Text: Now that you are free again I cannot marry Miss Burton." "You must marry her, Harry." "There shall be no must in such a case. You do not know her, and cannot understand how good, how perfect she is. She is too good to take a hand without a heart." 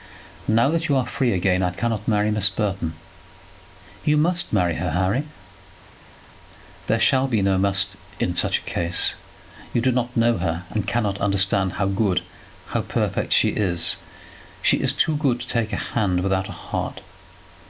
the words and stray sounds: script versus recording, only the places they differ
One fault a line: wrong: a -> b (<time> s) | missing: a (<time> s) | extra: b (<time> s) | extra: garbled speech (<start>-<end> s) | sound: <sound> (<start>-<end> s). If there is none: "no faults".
no faults